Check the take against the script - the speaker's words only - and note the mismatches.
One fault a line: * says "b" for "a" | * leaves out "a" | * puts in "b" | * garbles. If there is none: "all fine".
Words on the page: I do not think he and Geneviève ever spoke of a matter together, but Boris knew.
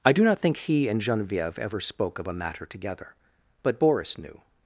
all fine